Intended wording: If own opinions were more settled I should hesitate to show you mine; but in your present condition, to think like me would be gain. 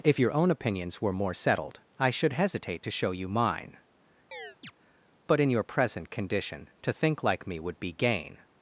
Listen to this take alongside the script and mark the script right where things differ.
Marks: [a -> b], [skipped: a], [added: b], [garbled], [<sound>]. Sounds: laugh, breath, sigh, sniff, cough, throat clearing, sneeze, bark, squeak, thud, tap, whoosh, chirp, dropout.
If [added: your] own opinions were more settled I should hesitate to show you mine; [chirp] but in your present condition, to think like me would be gain.